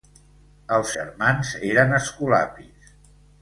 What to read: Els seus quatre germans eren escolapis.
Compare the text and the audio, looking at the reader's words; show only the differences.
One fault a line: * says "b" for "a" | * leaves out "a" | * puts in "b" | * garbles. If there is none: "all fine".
* leaves out "seus quatre"